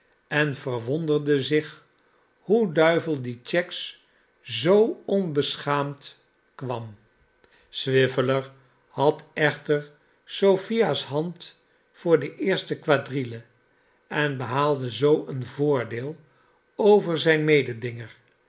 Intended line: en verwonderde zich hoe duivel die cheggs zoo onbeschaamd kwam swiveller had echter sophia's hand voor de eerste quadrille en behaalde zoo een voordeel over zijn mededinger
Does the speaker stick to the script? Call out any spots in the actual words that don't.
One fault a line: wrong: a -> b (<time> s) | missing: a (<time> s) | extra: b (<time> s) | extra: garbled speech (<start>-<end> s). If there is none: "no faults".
no faults